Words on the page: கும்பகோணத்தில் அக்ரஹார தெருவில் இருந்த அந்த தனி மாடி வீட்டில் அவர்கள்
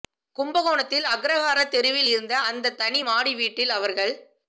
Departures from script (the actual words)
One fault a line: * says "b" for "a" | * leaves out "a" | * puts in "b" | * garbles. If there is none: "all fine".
all fine